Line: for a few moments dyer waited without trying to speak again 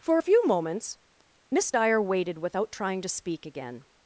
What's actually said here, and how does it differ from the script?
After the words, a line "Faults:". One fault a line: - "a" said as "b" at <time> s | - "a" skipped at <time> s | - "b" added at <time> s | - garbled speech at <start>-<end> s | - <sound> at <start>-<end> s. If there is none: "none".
for a few moments miss dyer waited without trying to speak again
Faults:
- "miss" added at 1.5 s